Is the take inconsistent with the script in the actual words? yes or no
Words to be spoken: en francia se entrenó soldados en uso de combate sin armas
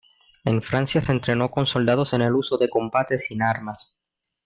yes